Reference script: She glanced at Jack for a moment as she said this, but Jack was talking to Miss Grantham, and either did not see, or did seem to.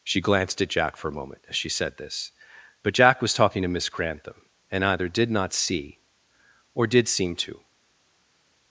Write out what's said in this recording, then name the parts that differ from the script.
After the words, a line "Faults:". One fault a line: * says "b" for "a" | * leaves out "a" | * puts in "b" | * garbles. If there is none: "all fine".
She glanced at Jack for a moment as she said this, but Jack was talking to Miss Grantham, and either did not see, or did seem to.
Faults:
all fine